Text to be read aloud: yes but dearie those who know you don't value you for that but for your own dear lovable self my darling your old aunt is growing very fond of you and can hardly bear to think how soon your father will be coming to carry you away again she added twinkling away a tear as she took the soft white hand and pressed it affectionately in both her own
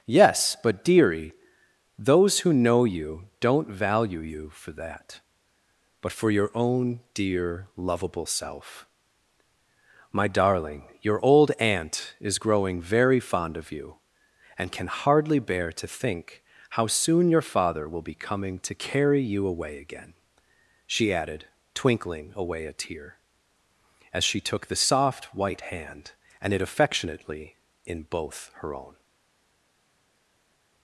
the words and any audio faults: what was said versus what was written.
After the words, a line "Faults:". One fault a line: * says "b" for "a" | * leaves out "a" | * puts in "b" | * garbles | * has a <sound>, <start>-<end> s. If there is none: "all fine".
yes but dearie those who know you don't value you for that but for your own dear lovable self my darling your old aunt is growing very fond of you and can hardly bear to think how soon your father will be coming to carry you away again she added twinkling away a tear as she took the soft white hand and it affectionately in both her own
Faults:
* leaves out "pressed"